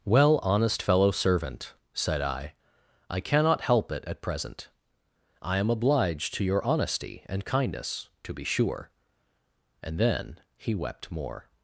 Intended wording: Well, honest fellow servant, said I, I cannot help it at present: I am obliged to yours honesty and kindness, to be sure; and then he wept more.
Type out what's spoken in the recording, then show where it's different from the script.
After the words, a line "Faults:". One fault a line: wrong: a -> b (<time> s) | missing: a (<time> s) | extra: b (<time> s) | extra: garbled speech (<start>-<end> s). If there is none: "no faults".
Well, honest fellow servant, said I, I cannot help it at present: I am obliged to your honesty and kindness, to be sure; and then he wept more.
Faults:
wrong: yours -> your (6.4 s)